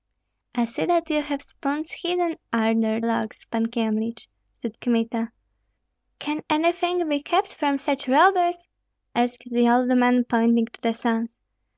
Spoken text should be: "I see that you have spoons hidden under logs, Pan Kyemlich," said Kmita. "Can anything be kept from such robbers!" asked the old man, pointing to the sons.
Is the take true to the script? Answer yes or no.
yes